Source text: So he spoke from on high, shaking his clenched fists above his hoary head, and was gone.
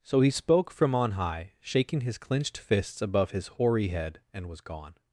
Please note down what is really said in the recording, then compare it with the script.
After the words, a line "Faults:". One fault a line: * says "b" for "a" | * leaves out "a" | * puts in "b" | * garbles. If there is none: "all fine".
So he spoke from on high, shaking his clenched fists above his hoary head, and was gone.
Faults:
all fine